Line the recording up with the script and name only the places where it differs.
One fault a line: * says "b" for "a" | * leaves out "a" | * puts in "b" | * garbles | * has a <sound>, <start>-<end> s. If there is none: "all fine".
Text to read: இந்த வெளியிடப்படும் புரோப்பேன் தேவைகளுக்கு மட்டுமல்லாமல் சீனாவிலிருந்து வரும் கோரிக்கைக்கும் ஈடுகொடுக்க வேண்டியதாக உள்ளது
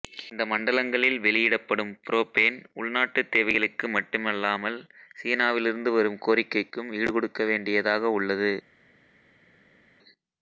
* puts in "மண்டலங்களில்"
* puts in "உள்நாட்டுத்"